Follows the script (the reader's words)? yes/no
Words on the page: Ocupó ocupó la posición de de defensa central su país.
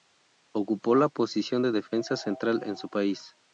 no